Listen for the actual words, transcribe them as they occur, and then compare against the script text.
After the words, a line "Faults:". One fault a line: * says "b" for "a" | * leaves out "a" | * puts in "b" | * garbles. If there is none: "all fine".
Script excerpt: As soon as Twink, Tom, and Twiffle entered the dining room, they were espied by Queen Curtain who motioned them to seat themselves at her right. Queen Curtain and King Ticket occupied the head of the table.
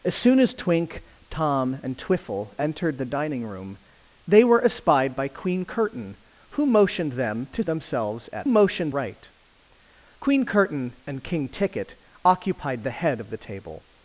As soon as Twink, Tom, and Twiffle entered the dining room, they were espied by Queen Curtain who motioned them to themselves at motioned right. Queen Curtain and King Ticket occupied the head of the table.
Faults:
* leaves out "seat"
* says "motioned" for "her"